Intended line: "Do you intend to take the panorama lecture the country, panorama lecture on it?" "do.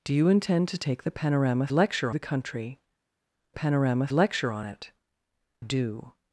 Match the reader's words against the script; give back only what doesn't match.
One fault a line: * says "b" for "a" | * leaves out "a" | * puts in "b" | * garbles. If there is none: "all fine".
all fine